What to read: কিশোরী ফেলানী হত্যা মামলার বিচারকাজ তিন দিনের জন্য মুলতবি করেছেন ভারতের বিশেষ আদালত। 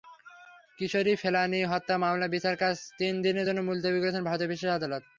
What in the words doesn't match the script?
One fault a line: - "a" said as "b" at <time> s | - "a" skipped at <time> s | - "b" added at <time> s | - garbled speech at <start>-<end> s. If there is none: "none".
none